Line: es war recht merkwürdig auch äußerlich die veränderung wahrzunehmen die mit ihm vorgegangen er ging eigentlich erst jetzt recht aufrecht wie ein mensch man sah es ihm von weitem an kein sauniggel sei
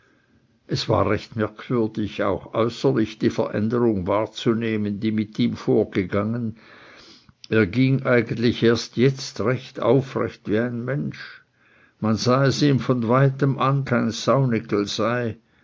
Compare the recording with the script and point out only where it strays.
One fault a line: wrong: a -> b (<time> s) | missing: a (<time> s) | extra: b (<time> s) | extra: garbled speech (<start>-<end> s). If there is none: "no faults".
no faults